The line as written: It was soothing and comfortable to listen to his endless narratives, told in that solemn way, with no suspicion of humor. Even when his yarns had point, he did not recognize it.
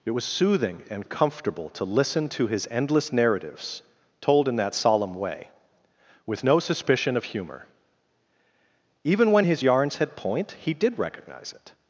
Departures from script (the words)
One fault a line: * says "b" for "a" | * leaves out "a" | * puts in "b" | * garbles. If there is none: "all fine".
* leaves out "not"